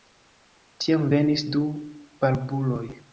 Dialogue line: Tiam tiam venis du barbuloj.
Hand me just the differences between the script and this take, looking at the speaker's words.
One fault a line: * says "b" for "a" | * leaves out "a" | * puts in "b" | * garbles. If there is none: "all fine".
* leaves out "tiam"